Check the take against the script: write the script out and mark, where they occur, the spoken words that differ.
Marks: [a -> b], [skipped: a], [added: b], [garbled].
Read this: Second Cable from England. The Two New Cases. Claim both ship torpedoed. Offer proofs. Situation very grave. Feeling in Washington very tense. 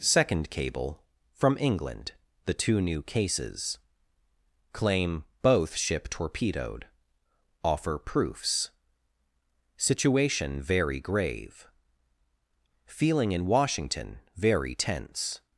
Second Cable from England. The Two New Cases. Claim both ship torpedoed. Offer proofs. Situation very grave. Feeling in Washington very tense.